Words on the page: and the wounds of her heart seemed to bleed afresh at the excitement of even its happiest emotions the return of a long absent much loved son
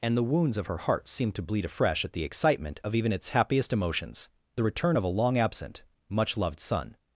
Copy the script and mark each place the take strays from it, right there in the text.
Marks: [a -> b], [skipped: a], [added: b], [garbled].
and the wounds of her heart seemed to bleed afresh at the excitement of even its happiest emotions the return of a long absent much loved son